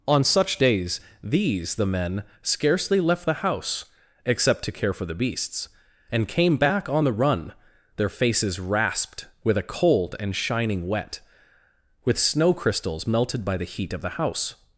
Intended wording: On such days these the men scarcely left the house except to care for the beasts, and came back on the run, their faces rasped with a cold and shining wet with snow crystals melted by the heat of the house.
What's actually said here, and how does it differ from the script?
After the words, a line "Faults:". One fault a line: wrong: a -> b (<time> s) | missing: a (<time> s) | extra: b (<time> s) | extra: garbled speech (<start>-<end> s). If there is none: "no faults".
On such days these the men scarcely left the house except to care for the beasts, and came back on the run, their faces rasped with a cold and shining wet with snow crystals melted by the heat of the house.
Faults:
no faults